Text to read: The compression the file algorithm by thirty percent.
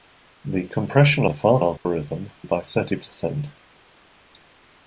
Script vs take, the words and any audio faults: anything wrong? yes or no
yes